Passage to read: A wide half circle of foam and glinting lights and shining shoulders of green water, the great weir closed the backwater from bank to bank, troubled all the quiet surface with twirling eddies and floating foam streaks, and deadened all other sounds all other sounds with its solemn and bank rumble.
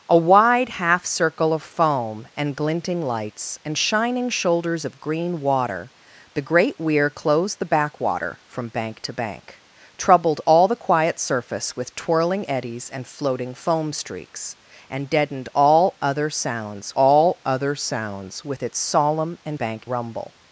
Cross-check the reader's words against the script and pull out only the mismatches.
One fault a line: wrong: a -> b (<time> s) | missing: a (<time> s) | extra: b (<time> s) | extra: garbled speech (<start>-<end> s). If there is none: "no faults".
no faults